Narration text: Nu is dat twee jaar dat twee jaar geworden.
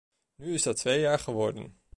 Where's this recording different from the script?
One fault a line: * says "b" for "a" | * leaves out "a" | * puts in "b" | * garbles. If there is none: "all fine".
* leaves out "dat twee jaar"